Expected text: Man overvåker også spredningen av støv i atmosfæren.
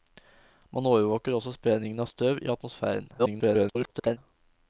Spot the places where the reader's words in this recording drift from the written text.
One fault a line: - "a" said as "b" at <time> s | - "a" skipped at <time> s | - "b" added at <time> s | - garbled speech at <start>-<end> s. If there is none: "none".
- garbled speech at 3.2-4.2 s